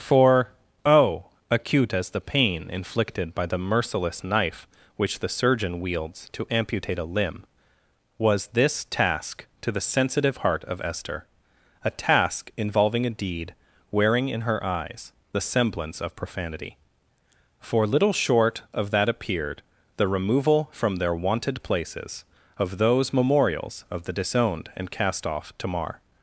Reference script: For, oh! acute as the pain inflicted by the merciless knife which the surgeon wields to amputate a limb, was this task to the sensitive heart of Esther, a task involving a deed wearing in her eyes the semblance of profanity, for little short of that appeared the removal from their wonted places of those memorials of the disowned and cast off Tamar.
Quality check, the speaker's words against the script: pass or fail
pass